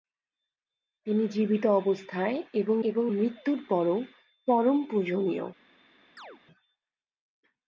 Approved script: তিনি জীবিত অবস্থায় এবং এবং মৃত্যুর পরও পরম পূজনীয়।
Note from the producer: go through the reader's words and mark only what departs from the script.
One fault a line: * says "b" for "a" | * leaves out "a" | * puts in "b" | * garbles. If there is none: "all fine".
all fine